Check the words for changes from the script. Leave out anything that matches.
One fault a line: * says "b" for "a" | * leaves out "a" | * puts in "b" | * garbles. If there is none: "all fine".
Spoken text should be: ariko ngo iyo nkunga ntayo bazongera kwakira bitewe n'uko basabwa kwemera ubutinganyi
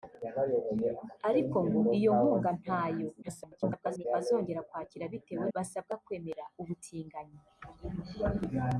* garbles
* leaves out "n'uko"